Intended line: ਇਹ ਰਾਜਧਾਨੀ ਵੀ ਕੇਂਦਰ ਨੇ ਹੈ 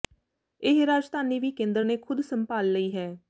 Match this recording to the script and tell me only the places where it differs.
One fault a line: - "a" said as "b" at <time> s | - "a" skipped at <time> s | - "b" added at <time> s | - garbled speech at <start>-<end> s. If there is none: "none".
- "ਖ਼ੁਦ ਸੰਭਾਲ ਲਈ" added at 2.0 s